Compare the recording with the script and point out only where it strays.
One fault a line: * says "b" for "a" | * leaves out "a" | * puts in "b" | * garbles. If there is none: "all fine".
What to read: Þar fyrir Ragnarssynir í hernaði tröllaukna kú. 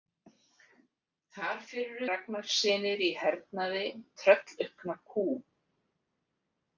all fine